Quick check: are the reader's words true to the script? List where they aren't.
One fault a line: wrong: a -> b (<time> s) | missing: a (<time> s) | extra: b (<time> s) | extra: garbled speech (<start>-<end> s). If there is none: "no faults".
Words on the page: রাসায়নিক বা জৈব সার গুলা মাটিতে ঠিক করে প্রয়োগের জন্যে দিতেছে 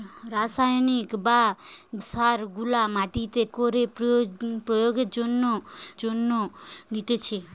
missing: জৈব (1.4 s)
missing: ঠিক (3.4 s)
extra: জন্যে (6.0 s)